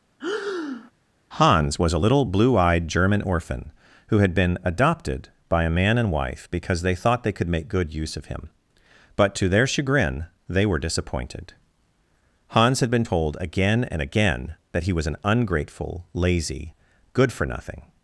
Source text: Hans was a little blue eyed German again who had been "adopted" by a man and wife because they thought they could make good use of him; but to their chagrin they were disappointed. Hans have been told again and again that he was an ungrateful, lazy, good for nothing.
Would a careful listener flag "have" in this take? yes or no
yes